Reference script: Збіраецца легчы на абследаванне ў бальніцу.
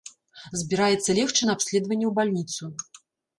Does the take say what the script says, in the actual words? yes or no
yes